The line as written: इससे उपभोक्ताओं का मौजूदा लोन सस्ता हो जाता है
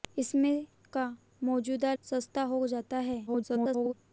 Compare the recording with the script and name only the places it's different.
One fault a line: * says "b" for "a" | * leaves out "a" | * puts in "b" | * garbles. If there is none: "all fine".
* leaves out "उपभोक्ताओं"
* leaves out "लोन"
* garbles